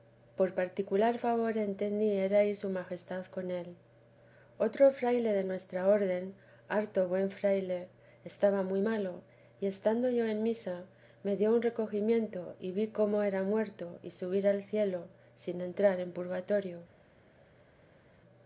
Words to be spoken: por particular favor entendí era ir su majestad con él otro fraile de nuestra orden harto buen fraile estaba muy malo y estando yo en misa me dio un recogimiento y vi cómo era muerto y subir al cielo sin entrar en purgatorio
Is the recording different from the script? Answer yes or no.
no